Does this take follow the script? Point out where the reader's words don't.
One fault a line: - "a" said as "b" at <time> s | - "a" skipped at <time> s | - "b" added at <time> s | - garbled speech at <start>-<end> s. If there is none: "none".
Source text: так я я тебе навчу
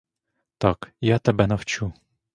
- "я" skipped at 1.2 s